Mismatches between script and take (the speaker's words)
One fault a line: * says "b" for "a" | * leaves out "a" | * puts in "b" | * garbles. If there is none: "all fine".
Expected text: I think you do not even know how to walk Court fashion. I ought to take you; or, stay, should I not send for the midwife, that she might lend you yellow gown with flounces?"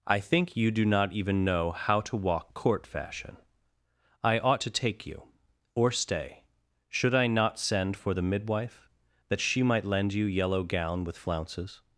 all fine